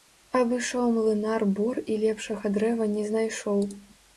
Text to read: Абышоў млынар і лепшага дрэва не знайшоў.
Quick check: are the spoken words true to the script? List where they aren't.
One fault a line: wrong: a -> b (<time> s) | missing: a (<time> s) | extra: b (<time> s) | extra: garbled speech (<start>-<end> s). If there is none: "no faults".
extra: бор (1.6 s)